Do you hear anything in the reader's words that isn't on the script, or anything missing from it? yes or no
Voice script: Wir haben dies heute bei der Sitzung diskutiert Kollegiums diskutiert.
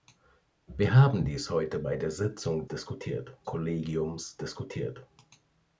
no